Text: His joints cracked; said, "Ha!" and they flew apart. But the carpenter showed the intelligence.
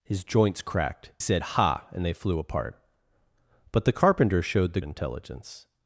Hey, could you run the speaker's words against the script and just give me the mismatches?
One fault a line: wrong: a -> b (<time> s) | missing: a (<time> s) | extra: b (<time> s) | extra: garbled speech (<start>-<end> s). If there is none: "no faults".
no faults